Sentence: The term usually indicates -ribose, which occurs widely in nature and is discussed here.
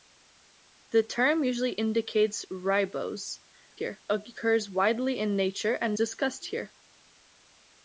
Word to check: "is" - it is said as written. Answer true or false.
false